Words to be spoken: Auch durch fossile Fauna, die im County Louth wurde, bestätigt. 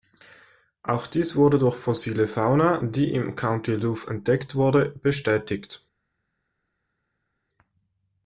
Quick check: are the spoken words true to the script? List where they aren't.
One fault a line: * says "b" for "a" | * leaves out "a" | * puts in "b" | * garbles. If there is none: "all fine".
* puts in "dies wurde"
* puts in "entdeckt"